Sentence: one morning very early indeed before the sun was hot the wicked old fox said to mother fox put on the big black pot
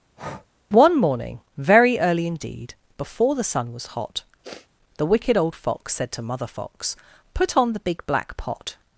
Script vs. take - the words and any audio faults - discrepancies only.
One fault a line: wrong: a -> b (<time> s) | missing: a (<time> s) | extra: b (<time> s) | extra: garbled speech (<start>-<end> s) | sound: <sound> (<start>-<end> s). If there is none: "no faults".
sound: breath (0.2-0.5 s)
sound: sniff (4.4-4.7 s)